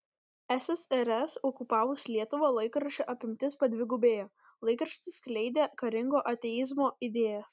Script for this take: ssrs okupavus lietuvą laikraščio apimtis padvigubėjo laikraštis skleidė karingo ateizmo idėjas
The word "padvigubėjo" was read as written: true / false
true